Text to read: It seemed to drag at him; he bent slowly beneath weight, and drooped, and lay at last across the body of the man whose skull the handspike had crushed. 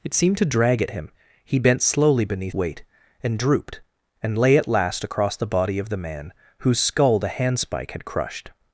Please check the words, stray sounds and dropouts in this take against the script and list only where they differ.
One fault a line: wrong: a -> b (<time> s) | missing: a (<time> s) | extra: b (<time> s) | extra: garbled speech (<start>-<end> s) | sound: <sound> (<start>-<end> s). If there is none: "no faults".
no faults